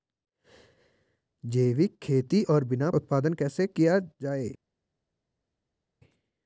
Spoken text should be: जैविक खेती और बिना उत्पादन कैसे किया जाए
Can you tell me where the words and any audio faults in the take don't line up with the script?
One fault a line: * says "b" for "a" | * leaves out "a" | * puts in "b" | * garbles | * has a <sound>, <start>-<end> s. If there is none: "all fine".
all fine